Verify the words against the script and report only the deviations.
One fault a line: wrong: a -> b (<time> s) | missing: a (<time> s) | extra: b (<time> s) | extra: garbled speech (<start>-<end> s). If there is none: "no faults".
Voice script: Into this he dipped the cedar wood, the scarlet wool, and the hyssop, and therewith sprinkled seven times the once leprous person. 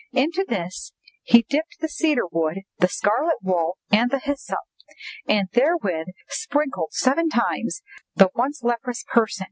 no faults